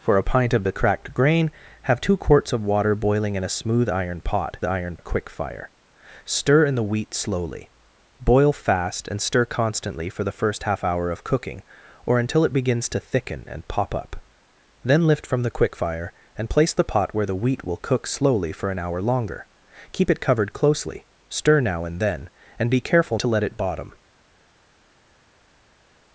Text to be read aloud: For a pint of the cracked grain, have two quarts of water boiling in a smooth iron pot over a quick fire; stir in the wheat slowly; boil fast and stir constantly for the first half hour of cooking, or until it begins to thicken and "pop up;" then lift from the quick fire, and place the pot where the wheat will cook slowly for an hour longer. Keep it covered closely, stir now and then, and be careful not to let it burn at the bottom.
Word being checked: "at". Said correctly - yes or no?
no